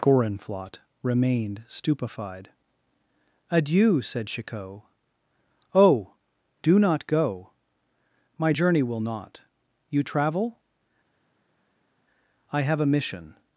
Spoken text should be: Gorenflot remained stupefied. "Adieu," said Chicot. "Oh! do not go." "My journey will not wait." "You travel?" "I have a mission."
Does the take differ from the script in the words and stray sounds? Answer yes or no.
yes